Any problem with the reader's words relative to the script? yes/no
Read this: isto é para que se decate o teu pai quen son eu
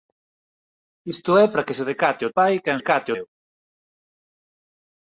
yes